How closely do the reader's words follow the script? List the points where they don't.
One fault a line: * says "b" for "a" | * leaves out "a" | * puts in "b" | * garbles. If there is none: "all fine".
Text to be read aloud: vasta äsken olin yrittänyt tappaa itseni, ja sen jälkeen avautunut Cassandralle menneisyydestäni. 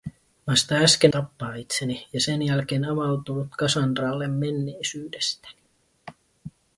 * leaves out "olin yrittänyt"